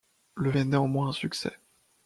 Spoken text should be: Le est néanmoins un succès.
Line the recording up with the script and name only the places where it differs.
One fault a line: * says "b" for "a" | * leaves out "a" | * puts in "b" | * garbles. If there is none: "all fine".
all fine